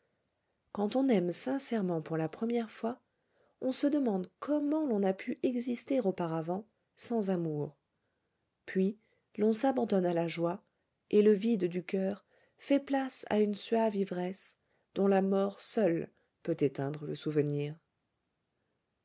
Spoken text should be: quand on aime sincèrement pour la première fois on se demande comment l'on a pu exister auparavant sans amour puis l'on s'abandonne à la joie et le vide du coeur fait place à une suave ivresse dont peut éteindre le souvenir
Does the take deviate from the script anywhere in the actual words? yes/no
yes